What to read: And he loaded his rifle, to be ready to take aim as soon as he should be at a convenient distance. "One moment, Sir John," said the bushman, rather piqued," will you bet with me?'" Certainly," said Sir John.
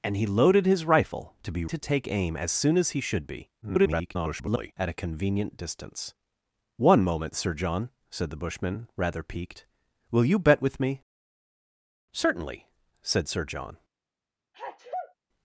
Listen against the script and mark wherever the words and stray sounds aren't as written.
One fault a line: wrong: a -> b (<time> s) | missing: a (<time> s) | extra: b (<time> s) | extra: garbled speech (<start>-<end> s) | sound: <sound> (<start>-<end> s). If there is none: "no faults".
missing: ready (1.6 s)
extra: garbled speech (3.6-4.7 s)
sound: sneeze (14.5-15.2 s)